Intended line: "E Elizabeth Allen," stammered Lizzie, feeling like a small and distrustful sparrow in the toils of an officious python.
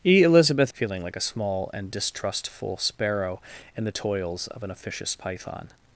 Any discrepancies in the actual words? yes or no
yes